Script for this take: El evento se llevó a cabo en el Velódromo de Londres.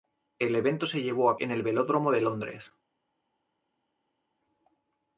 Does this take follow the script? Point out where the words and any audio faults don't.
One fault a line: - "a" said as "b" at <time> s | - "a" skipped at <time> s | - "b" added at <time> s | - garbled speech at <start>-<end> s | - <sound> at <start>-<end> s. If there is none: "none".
- "cabo" skipped at 1.4 s